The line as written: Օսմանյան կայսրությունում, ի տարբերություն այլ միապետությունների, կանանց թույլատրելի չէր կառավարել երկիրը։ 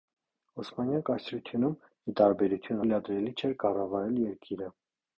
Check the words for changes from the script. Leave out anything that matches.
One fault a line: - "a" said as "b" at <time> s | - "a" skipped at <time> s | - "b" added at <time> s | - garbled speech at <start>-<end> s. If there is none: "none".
- "այլ միապետությունների կանանց" skipped at 2.8 s